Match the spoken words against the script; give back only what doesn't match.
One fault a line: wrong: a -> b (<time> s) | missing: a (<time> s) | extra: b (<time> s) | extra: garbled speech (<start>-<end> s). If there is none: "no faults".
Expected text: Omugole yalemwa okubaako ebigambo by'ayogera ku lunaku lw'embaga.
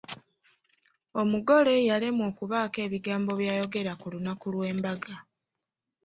no faults